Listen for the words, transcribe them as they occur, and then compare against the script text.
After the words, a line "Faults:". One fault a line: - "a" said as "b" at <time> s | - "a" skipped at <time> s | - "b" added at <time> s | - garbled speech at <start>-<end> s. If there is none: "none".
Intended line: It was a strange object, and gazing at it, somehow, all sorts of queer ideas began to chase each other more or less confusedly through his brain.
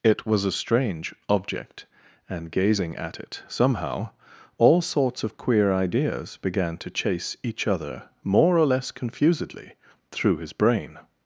It was a strange object, and gazing at it, somehow, all sorts of queer ideas began to chase each other more or less confusedly through his brain.
Faults:
none